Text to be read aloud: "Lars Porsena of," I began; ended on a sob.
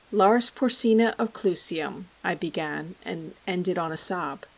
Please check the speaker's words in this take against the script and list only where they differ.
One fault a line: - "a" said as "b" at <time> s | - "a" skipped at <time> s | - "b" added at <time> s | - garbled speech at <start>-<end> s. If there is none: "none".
- "Clusium" added at 1.3 s
- "and" added at 3.0 s